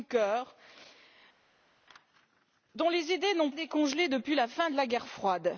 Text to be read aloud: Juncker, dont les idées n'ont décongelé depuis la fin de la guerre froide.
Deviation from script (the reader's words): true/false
false